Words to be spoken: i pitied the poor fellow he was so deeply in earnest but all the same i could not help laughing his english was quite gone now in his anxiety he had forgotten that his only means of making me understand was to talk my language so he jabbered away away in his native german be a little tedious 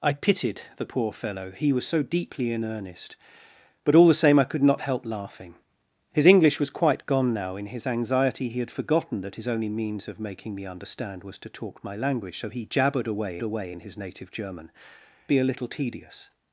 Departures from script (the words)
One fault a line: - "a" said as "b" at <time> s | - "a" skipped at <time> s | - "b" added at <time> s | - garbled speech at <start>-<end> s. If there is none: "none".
none